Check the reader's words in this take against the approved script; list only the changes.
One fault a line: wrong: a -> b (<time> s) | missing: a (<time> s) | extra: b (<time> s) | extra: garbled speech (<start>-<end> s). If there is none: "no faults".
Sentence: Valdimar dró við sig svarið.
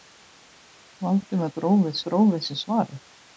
extra: dró við (2.1 s)